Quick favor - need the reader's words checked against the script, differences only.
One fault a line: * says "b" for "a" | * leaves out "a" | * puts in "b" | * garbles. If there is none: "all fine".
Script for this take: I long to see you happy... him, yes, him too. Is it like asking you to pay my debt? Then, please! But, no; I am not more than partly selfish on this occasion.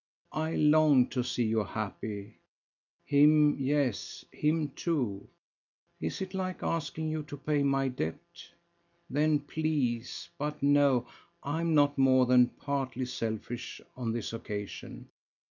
all fine